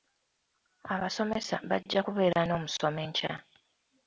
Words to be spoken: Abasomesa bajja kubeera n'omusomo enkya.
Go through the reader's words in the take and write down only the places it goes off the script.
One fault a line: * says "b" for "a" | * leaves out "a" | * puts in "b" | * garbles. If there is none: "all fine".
all fine